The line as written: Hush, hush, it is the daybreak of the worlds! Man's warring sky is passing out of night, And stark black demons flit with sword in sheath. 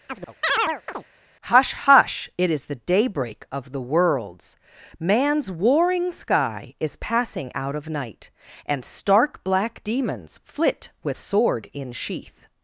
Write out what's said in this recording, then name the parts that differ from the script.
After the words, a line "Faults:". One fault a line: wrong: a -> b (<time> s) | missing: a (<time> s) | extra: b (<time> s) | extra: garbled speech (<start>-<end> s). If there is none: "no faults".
Hush, hush, it is the daybreak of the worlds! Man's warring sky is passing out of night, And stark black demons flit with sword in sheath.
Faults:
no faults